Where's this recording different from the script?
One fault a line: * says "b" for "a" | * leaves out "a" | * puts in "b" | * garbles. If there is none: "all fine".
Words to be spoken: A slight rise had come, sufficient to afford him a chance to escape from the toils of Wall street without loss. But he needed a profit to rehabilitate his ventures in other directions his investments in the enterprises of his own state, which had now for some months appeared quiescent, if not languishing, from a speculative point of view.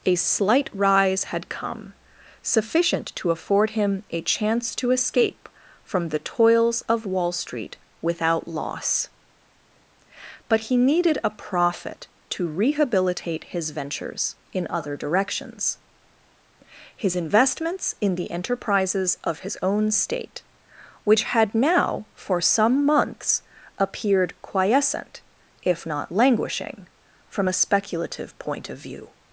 all fine